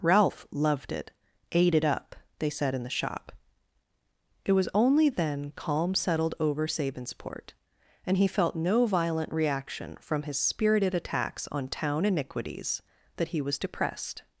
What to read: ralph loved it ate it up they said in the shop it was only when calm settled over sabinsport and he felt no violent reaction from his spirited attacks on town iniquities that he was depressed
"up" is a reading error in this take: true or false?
false